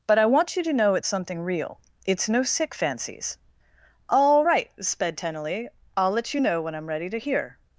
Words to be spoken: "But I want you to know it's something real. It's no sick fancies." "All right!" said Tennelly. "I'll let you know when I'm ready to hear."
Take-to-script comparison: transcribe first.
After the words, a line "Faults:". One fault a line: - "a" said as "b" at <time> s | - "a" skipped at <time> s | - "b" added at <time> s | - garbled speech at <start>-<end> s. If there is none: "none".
"But I want you to know it's something real. It's no sick fancies." "All right!" sped Tennelly. "I'll let you know when I'm ready to hear."
Faults:
- "said" said as "sped" at 4.8 s